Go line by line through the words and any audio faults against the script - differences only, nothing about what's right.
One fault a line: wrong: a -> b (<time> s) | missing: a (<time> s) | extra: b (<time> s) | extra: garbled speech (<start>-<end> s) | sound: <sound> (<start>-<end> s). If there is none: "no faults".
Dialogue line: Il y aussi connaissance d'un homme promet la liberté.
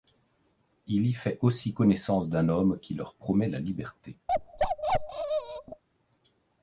extra: fait (1.1 s)
extra: qui leur (2.8 s)
sound: bark (4.3-5.8 s)